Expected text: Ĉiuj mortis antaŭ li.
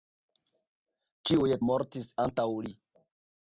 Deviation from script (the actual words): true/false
false